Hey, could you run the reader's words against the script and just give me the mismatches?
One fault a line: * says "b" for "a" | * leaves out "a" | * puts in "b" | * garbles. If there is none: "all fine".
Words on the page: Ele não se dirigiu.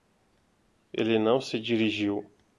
all fine